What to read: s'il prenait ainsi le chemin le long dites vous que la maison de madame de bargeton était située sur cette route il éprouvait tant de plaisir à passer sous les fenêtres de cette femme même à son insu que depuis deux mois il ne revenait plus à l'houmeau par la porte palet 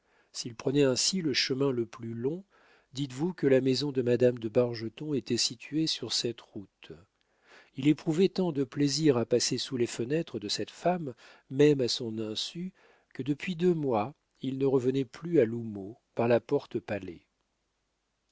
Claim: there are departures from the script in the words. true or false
true